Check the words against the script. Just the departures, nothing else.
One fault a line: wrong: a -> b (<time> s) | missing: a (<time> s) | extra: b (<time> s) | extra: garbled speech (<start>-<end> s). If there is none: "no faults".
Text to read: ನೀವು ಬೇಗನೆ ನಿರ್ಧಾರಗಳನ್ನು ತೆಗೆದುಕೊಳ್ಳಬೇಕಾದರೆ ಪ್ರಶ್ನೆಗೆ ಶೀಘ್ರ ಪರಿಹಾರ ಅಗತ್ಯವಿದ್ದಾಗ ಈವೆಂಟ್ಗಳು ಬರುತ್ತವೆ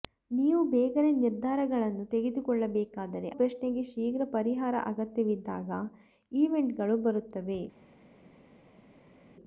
no faults